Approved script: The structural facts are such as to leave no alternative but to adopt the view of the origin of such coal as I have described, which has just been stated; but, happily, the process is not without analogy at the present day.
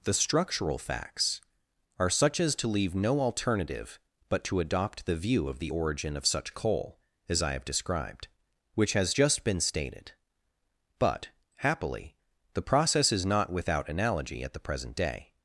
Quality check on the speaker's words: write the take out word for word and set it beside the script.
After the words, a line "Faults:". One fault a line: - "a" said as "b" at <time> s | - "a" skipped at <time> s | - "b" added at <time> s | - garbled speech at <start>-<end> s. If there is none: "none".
The structural facts are such as to leave no alternative but to adopt the view of the origin of such coal as I have described, which has just been stated; but, happily, the process is not without analogy at the present day.
Faults:
none